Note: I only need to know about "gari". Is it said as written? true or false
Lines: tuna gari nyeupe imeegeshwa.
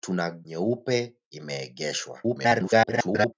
false